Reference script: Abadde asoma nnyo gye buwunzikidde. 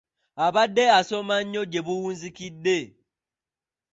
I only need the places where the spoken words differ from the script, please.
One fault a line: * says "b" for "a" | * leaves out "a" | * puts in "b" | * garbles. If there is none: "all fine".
all fine